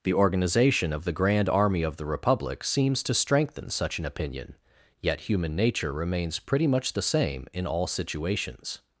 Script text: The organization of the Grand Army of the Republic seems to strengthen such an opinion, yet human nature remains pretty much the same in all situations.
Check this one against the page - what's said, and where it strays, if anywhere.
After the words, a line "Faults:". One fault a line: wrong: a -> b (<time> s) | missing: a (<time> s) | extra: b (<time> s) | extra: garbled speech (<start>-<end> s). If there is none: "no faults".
The organization of the Grand Army of the Republic seems to strengthen such an opinion, yet human nature remains pretty much the same in all situations.
Faults:
no faults